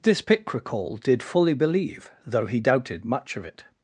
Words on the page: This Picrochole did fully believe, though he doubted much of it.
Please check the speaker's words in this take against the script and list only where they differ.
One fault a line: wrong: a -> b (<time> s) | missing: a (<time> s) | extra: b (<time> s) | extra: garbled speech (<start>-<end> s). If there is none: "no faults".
no faults